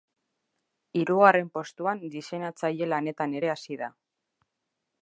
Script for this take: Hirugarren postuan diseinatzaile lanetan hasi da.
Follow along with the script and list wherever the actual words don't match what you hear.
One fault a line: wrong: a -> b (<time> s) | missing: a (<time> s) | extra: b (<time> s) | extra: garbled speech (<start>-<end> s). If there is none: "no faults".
extra: ere (3.4 s)